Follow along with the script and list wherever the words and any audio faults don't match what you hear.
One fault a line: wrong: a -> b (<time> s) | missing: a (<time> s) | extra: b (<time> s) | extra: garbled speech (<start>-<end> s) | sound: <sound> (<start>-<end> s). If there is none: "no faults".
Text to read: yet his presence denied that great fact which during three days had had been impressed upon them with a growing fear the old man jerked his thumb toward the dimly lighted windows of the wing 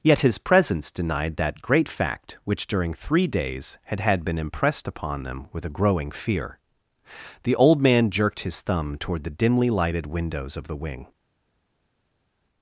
no faults